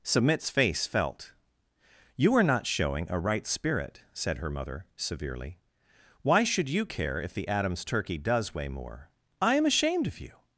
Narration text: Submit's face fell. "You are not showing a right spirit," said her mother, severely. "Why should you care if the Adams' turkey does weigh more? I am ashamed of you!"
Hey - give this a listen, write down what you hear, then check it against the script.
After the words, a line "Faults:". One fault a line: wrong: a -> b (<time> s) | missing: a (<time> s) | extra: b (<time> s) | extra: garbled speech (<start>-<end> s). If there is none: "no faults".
Submit's face felt. "You are not showing a right spirit," said her mother, severely. "Why should you care if the Adams' turkey does weigh more? I am ashamed of you!"
Faults:
wrong: fell -> felt (0.9 s)